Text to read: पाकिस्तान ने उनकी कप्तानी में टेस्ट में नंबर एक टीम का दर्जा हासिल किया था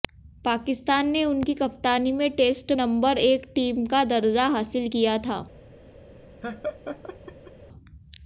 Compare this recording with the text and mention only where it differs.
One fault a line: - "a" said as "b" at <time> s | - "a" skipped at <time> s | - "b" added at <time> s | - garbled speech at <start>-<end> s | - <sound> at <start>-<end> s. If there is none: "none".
- "में" skipped at 2.7 s
- laugh at 6.4-7.5 s